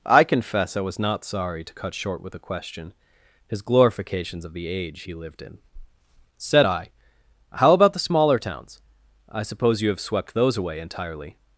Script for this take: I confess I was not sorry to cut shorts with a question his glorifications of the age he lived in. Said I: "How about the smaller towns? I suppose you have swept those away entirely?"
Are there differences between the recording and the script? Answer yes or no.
yes